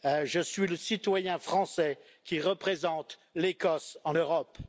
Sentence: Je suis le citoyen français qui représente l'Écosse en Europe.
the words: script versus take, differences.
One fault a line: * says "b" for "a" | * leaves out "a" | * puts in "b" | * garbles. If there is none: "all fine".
all fine